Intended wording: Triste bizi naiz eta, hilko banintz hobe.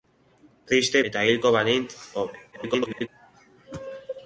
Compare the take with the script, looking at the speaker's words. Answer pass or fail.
fail